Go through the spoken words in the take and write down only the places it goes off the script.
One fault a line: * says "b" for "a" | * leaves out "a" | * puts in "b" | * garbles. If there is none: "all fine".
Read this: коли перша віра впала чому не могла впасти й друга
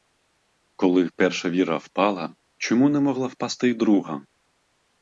all fine